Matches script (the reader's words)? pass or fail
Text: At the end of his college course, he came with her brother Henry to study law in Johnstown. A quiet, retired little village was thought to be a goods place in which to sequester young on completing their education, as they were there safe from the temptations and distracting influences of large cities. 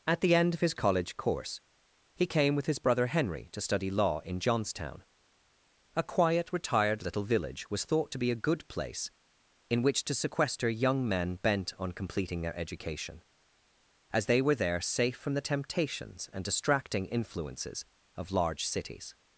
fail